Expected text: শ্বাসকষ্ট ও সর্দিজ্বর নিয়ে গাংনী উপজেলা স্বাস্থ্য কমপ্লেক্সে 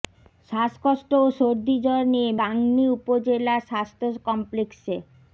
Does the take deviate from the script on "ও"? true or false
false